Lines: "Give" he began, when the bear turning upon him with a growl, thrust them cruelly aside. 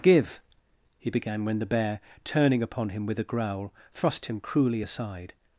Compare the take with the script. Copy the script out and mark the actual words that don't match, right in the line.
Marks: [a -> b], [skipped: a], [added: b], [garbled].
"Give" he began, when the bear turning upon him with a growl, thrust [them -> him] cruelly aside.